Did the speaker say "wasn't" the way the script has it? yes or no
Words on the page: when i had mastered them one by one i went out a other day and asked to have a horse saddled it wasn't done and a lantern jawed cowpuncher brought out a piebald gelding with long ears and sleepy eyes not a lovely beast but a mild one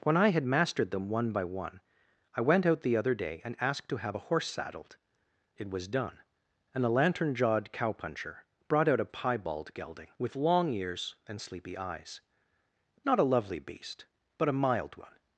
no